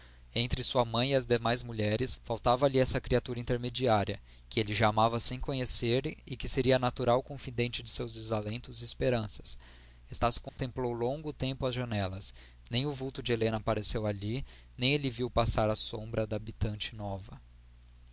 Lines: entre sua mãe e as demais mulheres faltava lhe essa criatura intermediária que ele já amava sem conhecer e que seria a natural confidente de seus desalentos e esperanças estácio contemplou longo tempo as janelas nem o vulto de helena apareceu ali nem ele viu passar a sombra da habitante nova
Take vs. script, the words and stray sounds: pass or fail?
fail